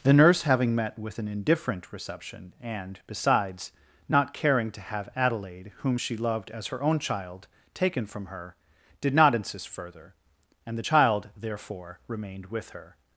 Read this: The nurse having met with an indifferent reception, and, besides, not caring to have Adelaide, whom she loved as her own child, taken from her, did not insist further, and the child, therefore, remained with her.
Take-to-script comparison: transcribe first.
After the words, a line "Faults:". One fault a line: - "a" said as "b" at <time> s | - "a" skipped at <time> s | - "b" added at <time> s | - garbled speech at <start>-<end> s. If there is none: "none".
The nurse having met with an indifferent reception, and, besides, not caring to have Adelaide, whom she loved as her own child, taken from her, did not insist further, and the child, therefore, remained with her.
Faults:
none